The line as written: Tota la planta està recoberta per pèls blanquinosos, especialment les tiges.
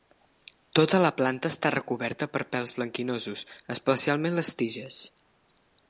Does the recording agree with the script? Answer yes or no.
yes